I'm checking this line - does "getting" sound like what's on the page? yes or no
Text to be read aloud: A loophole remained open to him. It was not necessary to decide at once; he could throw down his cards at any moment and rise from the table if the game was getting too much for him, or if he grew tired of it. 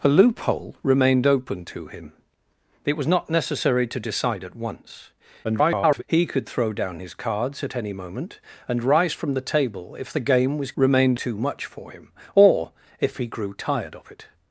no